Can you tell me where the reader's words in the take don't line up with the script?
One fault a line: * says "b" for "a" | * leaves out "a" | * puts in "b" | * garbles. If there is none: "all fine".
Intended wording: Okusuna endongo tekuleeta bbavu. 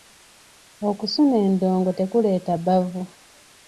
all fine